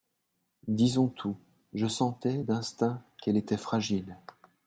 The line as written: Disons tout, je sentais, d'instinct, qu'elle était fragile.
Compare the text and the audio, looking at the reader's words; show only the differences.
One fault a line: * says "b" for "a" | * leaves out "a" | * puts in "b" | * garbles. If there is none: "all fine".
all fine